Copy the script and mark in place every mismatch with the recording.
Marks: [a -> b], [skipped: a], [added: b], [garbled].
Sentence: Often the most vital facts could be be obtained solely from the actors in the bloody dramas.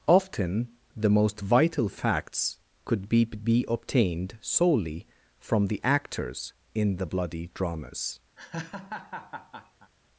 Often the most vital facts could be be obtained solely from the actors in the bloody dramas.